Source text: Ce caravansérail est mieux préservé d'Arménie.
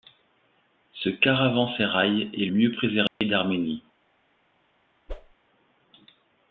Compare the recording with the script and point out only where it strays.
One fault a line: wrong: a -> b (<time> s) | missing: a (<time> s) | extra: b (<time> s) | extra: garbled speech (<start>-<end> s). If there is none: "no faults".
no faults